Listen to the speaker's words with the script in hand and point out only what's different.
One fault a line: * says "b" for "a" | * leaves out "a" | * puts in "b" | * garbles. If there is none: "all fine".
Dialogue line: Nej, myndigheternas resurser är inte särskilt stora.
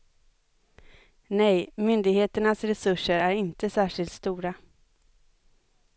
all fine